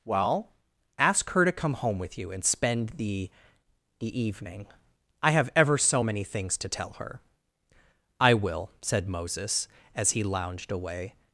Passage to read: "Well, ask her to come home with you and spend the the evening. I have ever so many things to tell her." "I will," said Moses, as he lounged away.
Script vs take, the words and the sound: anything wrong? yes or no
no